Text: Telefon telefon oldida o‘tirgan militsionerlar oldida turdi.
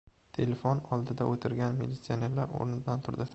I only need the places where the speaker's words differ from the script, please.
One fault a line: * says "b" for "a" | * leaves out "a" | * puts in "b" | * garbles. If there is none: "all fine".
* leaves out "telefon"
* says "o‘rnidan" for "oldida"